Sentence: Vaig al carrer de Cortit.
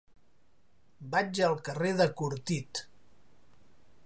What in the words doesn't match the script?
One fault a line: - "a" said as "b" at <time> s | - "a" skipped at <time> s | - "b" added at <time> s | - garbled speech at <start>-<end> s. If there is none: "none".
none